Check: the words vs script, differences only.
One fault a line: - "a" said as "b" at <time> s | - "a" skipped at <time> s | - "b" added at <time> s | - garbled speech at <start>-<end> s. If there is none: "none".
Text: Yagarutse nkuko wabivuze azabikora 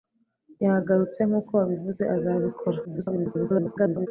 - garbled speech at 2.8-4.1 s